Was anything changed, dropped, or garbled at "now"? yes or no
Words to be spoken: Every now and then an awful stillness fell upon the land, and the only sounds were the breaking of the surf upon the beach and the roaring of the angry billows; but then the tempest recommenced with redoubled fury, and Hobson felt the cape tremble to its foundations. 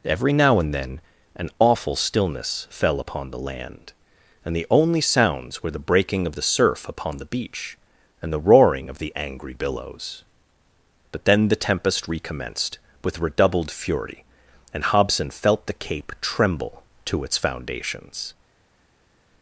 no